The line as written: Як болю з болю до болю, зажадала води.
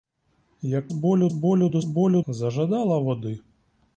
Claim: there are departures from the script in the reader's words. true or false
false